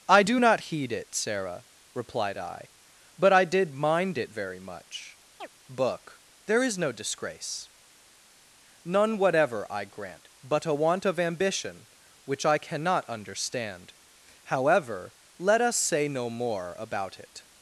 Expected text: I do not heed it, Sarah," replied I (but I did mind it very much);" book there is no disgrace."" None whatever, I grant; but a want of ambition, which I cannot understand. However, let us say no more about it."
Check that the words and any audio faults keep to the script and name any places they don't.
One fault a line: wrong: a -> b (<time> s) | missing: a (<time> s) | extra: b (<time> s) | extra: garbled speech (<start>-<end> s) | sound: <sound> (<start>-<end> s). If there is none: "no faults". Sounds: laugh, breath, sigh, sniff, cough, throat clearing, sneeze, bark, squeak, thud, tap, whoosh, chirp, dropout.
sound: chirp (5.4-5.5 s)